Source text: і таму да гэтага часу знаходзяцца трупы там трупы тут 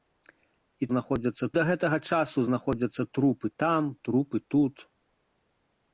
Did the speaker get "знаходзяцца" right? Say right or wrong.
right